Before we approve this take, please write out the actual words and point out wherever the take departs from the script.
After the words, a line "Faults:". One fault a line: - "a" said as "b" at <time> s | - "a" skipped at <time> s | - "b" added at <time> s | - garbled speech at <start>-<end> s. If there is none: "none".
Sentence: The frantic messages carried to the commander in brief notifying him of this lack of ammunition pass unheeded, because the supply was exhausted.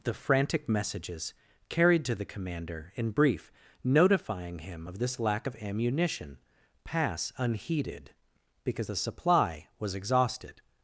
The frantic messages carried to the commander in brief notifying him of this lack of ammunition pass unheeded, because the supply was exhausted.
Faults:
none